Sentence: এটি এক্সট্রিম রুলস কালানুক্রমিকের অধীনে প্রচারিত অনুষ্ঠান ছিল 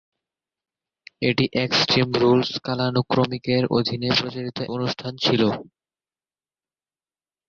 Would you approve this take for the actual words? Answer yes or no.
yes